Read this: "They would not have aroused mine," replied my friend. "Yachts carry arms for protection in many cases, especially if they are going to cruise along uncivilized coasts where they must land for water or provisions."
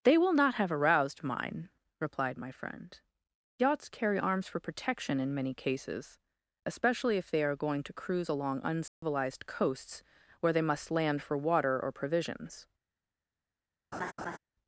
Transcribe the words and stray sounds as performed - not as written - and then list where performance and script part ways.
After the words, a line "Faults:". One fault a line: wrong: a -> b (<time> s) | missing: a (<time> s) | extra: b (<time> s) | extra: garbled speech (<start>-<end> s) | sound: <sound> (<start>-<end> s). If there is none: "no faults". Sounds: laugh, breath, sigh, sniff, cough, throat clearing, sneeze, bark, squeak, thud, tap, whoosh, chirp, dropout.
"They will not have aroused mine," replied my friend. "Yachts carry arms for protection in many cases, especially if they are going to cruise along uncivilized coasts where they must land for water or provisions."
Faults:
wrong: would -> will (0.2 s)
sound: dropout (8.9-9.0 s)
sound: laugh (13.9-14.4 s)